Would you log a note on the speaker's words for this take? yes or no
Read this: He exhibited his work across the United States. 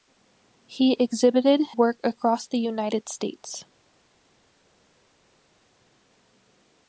yes